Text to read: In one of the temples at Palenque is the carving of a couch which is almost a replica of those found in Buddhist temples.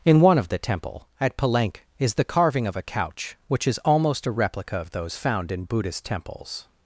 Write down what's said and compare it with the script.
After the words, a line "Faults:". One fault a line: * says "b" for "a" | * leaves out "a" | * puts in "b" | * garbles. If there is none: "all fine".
In one of the temple at Palenque is the carving of a couch which is almost a replica of those found in Buddhist temples.
Faults:
* says "temple" for "temples"